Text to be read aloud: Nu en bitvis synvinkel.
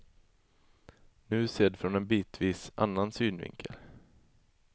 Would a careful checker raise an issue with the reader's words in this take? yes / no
yes